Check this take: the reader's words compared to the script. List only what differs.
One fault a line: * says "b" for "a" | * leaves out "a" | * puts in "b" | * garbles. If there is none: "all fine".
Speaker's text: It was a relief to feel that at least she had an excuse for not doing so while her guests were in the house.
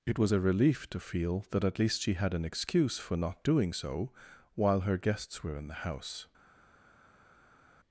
all fine